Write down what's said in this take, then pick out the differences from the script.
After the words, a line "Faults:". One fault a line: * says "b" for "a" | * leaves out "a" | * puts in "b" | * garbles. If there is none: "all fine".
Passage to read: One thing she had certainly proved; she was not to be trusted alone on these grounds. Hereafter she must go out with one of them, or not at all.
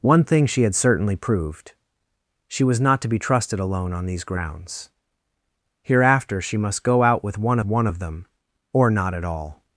One thing she had certainly proved; she was not to be trusted alone on these grounds. Hereafter she must go out with one one of them, or not at all.
Faults:
* puts in "one"